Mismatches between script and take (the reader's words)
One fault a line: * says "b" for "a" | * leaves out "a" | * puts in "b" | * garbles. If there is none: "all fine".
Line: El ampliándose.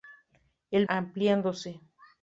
all fine